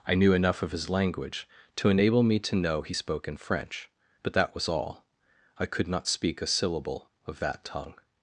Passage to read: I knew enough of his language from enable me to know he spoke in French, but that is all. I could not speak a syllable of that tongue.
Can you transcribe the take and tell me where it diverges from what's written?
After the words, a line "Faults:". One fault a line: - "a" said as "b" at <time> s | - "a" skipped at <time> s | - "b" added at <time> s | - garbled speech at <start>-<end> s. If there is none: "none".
I knew enough of his language to enable me to know he spoke in French, but that was all. I could not speak a syllable of that tongue.
Faults:
- "from" said as "to" at 1.8 s
- "is" said as "was" at 4.5 s